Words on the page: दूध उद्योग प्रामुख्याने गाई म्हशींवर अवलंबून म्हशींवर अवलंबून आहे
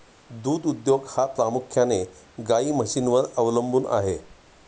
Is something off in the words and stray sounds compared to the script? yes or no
yes